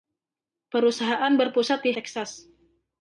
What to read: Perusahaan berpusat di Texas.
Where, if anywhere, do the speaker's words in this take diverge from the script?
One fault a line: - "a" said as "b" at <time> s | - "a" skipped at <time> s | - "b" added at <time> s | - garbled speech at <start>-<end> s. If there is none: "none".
none